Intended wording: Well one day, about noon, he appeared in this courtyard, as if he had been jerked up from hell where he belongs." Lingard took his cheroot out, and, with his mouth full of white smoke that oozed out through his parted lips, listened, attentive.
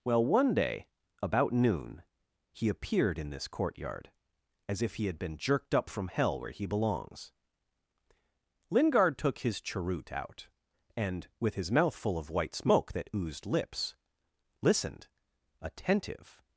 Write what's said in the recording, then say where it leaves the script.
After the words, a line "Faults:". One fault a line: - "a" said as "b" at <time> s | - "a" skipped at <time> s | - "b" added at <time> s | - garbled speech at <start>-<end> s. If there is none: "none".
Well one day, about noon, he appeared in this courtyard, as if he had been jerked up from hell where he belongs." Lingard took his cheroot out, and, with his mouth full of white smoke that oozed lips, listened, attentive.
Faults:
- "out through his parted" skipped at 13.4 s